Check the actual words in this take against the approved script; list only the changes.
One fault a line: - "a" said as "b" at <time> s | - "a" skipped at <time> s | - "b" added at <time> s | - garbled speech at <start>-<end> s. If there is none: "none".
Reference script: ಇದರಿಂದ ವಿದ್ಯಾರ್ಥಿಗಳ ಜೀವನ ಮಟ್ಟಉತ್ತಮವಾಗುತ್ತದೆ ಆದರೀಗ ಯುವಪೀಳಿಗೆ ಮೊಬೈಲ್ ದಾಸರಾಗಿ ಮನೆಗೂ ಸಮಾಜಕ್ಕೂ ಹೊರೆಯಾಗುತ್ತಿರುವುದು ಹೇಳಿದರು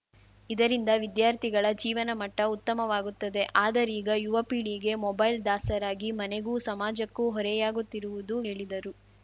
none